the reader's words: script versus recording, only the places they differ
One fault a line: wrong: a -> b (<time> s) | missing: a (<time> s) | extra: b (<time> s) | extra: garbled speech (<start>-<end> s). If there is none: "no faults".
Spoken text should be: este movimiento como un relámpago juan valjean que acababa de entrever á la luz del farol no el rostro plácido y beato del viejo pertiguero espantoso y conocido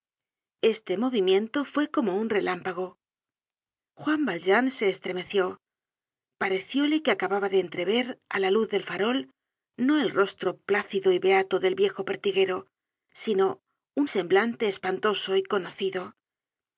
extra: fue (1.6 s)
extra: se estremeció parecióle (4.7 s)
extra: sino un semblante (13.1 s)